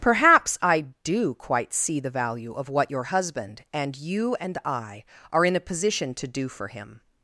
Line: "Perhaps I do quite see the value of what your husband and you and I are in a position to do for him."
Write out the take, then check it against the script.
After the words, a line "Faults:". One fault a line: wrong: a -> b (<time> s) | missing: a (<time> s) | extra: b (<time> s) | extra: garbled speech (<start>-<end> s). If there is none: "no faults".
"Perhaps I do quite see the value of what your husband and you and I are in a position to do for him."
Faults:
no faults